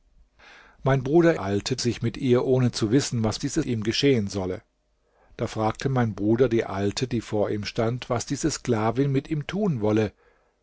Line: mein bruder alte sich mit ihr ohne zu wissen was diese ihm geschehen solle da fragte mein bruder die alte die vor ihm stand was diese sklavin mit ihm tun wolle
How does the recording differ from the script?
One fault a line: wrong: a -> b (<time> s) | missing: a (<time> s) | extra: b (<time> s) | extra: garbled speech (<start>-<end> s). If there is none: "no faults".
no faults